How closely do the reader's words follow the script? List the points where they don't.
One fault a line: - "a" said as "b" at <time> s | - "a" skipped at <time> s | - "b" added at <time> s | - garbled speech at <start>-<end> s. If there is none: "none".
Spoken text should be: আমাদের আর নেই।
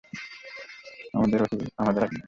none